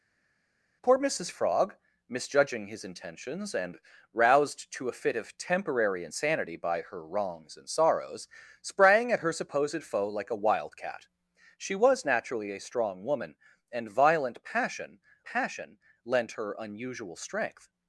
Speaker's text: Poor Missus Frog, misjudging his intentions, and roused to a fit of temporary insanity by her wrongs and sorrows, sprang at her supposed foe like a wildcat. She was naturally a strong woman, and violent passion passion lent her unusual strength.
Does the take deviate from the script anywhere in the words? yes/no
no